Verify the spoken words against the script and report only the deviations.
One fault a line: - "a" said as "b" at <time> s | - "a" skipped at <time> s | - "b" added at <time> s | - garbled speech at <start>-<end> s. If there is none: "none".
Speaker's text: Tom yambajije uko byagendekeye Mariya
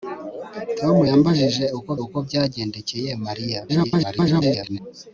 - "uko" added at 2.0 s
- garbled speech at 3.7-4.8 s